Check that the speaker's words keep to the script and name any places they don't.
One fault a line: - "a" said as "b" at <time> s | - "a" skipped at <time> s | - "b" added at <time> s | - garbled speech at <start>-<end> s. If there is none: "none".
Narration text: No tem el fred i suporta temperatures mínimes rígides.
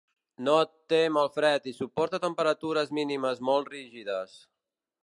- "molt" added at 3.5 s